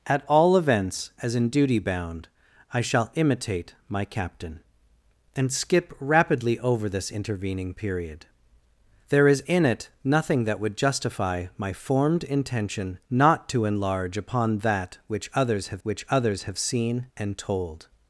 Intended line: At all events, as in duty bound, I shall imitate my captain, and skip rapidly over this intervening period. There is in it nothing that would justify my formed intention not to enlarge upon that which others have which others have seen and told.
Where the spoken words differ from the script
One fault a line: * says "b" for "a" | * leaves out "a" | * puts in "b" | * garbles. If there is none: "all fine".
all fine